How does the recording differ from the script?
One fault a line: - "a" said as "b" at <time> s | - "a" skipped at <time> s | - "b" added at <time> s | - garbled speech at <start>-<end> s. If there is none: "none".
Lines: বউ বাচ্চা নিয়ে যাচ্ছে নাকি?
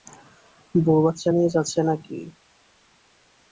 none